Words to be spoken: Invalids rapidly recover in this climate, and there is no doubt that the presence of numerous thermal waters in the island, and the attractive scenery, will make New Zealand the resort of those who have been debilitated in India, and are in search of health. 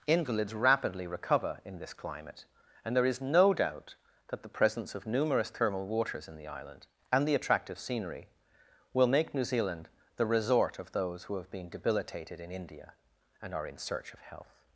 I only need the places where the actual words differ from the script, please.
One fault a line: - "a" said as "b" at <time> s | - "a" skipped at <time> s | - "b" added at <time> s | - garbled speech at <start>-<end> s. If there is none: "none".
none